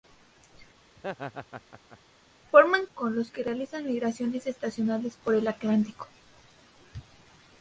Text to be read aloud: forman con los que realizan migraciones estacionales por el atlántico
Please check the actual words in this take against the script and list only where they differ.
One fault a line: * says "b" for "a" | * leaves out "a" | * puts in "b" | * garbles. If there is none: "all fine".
all fine